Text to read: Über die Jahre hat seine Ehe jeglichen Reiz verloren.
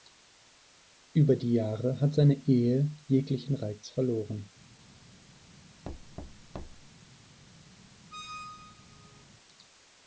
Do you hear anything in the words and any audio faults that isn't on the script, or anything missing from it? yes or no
yes